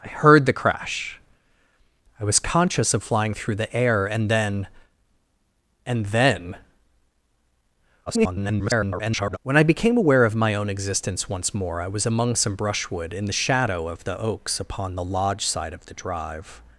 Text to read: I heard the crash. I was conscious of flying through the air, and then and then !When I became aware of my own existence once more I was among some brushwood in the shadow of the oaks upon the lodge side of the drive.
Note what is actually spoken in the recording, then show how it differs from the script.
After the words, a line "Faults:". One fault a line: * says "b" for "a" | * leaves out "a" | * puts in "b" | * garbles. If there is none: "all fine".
I heard the crash. I was conscious of flying through the air, and then and then [garbled] !When I became aware of my own existence once more I was among some brushwood in the shadow of the oaks upon the lodge side of the drive.
Faults:
* garbles